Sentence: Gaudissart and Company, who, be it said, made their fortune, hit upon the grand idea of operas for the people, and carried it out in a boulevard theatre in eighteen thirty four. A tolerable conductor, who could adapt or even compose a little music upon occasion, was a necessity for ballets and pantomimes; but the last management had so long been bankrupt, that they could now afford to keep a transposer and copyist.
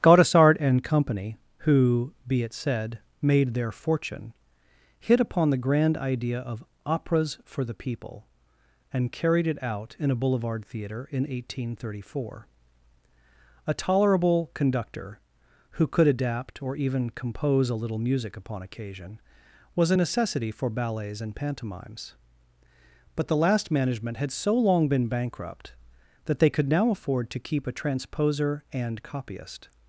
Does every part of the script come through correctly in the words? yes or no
yes